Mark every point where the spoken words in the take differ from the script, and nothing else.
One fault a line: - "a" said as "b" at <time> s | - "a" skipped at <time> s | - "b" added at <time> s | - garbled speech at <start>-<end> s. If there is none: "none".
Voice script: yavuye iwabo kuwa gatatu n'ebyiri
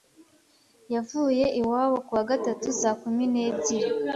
- "saa kumi" added at 2.8 s